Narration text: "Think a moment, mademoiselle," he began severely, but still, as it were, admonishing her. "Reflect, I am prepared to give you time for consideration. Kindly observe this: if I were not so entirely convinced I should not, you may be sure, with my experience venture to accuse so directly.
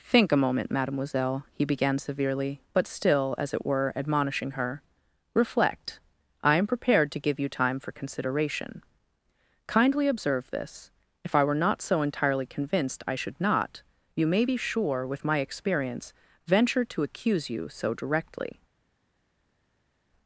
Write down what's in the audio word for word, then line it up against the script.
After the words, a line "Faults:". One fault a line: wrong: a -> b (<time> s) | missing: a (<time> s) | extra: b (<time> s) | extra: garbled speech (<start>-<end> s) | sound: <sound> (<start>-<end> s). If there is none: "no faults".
"Think a moment, mademoiselle," he began severely, but still, as it were, admonishing her. "Reflect, I am prepared to give you time for consideration. Kindly observe this: if I were not so entirely convinced I should not, you may be sure, with my experience venture to accuse you so directly.
Faults:
extra: you (17.5 s)